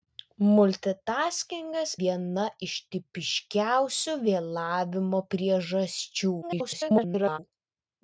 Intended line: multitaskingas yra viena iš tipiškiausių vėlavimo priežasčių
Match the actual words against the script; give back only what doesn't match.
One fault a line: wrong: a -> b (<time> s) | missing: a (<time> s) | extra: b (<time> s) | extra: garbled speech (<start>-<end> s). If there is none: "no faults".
missing: yra (1.9 s)
extra: garbled speech (6.4-7.4 s)